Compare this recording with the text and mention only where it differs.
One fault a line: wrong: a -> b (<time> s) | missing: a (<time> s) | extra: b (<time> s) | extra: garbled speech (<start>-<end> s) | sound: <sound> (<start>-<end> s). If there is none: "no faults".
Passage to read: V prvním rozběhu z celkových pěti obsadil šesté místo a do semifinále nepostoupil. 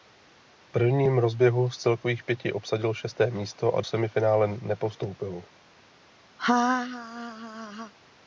missing: do (3.8 s)
sound: laugh (6.4-7.9 s)